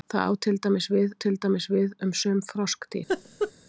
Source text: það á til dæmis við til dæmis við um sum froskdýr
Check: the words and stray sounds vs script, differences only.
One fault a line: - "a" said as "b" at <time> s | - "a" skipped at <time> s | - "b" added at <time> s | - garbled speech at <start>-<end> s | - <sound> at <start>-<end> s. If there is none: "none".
- laugh at 3.1-3.5 s